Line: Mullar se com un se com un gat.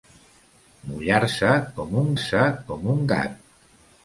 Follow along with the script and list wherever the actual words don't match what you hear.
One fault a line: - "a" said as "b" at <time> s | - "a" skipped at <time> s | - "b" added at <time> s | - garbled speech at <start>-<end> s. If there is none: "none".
none